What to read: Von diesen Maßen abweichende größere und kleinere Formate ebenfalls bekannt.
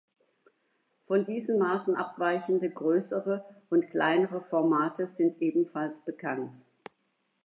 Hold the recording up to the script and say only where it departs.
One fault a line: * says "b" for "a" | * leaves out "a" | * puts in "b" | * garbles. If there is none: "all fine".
* puts in "sind"